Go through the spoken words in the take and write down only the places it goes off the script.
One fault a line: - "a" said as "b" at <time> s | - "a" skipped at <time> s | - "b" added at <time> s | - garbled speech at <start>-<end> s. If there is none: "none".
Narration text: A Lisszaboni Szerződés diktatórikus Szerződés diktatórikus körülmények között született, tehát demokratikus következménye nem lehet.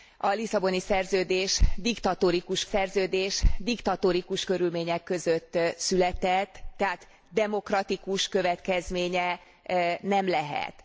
none